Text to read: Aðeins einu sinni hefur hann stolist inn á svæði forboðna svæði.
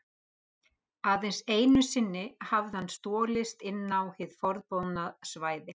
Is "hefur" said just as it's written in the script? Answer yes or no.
no